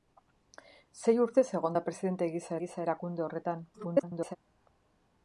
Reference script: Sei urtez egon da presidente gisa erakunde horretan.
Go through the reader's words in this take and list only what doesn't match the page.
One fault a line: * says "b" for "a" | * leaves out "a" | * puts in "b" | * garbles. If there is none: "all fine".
* puts in "gisa"
* garbles